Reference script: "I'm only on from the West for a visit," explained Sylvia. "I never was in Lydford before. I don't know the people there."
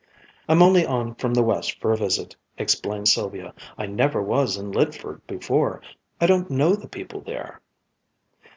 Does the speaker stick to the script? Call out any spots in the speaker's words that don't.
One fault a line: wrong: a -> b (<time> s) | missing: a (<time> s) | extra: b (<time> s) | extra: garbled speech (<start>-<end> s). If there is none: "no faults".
no faults